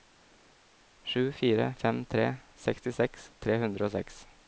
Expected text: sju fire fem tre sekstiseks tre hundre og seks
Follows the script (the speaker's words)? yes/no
yes